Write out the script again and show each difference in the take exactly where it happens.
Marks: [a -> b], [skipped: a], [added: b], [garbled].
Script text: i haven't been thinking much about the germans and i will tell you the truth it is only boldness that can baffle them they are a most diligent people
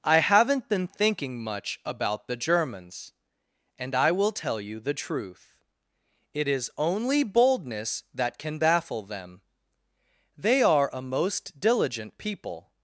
i haven't been thinking much about the germans and i will tell you the truth it is only boldness that can baffle them they are a most diligent people